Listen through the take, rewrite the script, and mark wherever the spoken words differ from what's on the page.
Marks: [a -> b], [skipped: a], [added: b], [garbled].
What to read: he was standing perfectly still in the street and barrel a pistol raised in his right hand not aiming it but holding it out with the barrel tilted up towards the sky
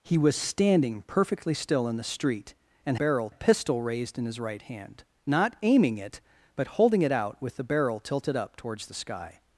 he was standing perfectly still in the street and barrel a pistol raised in his right hand not aiming it but holding it out with the barrel tilted up towards the sky